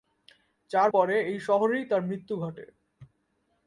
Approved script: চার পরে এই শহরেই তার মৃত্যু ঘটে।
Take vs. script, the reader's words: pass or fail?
pass